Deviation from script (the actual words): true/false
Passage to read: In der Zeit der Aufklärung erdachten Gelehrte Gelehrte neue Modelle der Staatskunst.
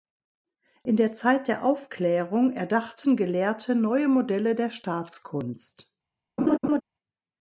true